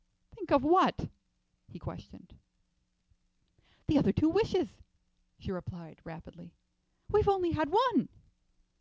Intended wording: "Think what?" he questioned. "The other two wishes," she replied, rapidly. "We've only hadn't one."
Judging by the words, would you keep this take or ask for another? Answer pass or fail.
fail